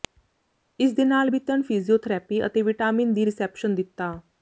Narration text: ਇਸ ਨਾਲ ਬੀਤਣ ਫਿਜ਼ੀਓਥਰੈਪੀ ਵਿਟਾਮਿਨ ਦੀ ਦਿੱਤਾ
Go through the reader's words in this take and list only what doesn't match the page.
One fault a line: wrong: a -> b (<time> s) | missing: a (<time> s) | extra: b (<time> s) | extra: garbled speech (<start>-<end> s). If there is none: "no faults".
extra: ਦੇ (0.9 s)
extra: ਅਤੇ (2.5 s)
extra: ਰਿਸੈਪਸ਼ਨ (3.2 s)